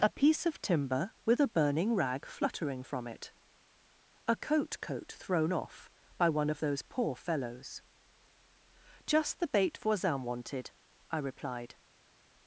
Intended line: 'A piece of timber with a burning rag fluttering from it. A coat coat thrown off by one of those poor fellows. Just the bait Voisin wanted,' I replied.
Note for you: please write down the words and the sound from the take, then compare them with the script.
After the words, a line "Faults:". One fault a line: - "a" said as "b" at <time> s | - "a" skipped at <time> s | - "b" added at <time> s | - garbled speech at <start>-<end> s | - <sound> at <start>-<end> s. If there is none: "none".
'A piece of timber with a burning rag fluttering from it. A coat coat thrown off by one of those poor fellows. Just the bait Voisin wanted,' I replied.
Faults:
none